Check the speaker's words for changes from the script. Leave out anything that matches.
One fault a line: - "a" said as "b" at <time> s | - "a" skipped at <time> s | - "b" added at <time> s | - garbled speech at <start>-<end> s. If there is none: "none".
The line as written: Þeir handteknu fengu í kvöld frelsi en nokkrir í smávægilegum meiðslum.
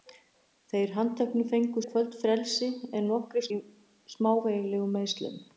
none